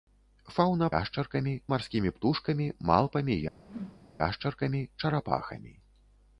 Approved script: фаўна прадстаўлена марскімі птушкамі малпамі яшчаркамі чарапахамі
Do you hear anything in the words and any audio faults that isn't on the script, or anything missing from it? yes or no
yes